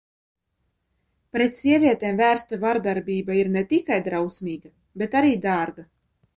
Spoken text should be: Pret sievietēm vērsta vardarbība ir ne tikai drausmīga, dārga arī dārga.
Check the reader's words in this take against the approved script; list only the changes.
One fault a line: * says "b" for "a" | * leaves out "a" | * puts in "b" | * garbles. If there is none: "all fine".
* says "bet" for "dārga"